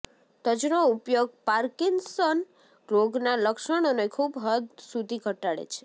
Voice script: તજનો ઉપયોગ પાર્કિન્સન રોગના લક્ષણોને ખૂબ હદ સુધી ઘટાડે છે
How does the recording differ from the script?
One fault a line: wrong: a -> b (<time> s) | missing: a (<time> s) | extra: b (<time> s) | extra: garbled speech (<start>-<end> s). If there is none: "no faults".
no faults